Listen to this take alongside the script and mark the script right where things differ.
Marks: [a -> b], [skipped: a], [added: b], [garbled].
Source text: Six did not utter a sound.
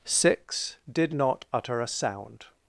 Six did not utter a sound.